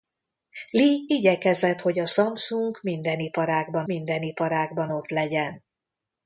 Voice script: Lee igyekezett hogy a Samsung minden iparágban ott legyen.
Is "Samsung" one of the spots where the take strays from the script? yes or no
no